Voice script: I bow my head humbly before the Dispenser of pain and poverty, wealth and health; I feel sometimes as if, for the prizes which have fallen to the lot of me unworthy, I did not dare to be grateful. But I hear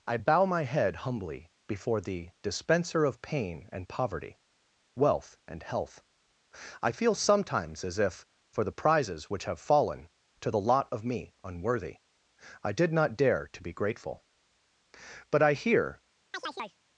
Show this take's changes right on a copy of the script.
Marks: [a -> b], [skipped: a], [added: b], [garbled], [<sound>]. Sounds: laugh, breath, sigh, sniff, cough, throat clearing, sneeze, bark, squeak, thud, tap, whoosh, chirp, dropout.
I bow my head humbly before the Dispenser of pain and poverty, wealth and health; I feel sometimes as if, for the prizes which have fallen to the lot of me unworthy, I did not dare to be grateful. But I hear [chirp]